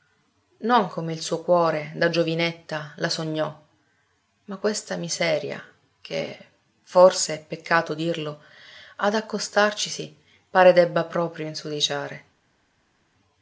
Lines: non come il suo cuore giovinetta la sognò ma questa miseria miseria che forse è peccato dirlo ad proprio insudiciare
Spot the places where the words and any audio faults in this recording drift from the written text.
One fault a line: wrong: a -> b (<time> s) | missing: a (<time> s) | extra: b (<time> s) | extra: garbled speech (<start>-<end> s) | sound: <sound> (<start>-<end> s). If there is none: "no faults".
extra: da (1.9 s)
missing: miseria (5.6 s)
extra: accostarcisi pare debba (9.2 s)